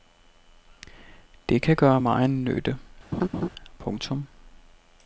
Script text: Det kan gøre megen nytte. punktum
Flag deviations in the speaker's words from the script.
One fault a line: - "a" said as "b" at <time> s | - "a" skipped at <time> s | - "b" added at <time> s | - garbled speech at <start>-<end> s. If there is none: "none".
none